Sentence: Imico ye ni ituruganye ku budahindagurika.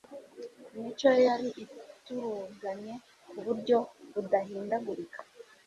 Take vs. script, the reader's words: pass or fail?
fail